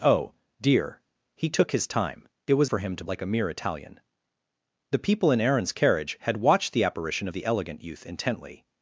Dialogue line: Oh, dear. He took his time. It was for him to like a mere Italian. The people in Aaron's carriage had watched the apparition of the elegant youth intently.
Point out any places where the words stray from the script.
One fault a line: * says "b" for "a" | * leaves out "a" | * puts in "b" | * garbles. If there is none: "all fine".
all fine